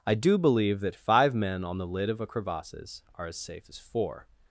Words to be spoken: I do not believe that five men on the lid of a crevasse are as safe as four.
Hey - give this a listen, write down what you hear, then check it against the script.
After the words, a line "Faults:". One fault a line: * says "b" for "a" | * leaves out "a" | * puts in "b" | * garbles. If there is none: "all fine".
I do believe that five men on the lid of a crevasses are as safe as four.
Faults:
* leaves out "not"
* says "crevasses" for "crevasse"